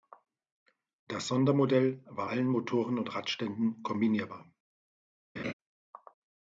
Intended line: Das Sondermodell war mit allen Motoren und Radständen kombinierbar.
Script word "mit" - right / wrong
wrong